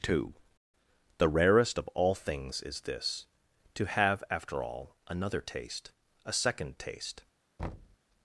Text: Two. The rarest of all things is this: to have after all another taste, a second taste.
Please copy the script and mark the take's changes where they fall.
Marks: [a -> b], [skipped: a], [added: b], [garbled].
Two. The rarest of all things is this: to have after all another taste, a second taste.